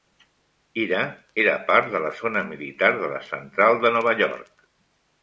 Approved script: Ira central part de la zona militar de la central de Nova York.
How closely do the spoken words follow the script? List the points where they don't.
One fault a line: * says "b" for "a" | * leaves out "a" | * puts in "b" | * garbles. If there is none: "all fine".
* says "era" for "central"